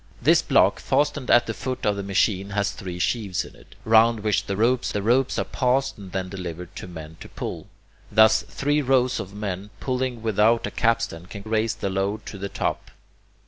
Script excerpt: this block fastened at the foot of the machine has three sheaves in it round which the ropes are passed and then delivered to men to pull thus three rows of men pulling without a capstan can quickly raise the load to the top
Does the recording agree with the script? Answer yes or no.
no